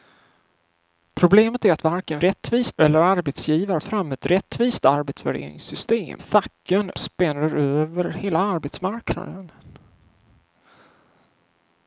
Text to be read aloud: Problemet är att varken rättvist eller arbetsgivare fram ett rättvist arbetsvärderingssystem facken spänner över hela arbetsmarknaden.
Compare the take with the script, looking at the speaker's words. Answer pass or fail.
pass